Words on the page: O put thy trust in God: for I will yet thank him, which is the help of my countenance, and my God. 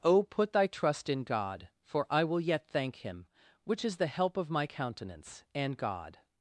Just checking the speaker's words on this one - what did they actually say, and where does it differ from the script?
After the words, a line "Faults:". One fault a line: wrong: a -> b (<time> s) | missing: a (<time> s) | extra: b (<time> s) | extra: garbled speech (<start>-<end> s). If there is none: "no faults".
O put thy trust in God: for I will yet thank him, which is the help of my countenance, and God.
Faults:
missing: my (5.8 s)